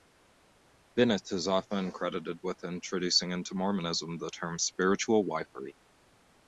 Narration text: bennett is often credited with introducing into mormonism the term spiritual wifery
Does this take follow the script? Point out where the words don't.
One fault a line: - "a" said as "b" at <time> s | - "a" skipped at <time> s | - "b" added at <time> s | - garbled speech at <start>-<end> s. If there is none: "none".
none